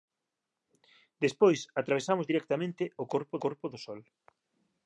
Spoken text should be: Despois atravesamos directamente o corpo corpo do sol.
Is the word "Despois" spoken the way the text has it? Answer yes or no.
yes